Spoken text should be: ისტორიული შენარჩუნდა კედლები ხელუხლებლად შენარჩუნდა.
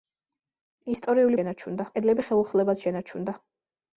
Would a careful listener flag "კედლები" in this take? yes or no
no